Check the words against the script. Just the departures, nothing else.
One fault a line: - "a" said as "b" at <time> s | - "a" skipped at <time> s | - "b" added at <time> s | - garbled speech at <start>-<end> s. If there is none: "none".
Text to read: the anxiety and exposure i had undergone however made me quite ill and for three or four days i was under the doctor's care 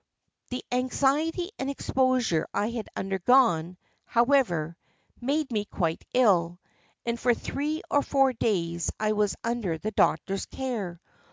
none